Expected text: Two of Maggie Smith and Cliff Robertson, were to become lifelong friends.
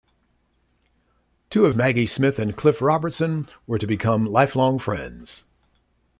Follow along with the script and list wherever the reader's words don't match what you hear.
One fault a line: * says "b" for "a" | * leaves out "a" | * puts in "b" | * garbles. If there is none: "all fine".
all fine